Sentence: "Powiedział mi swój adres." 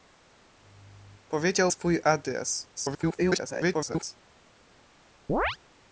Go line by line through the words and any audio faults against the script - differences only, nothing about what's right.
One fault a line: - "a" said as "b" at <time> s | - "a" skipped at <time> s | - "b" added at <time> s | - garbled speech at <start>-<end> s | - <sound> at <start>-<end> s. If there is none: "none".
- "mi" skipped at 1.7 s
- garbled speech at 2.8-4.2 s
- chirp at 5.3-5.6 s